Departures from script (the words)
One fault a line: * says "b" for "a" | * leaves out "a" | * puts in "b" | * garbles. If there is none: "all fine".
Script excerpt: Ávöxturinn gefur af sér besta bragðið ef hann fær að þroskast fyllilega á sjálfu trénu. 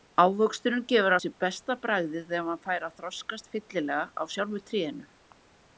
* leaves out "af"